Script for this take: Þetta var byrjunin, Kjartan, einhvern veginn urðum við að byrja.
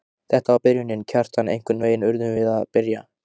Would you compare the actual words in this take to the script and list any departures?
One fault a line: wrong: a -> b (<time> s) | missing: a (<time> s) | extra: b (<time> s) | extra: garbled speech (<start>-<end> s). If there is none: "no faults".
no faults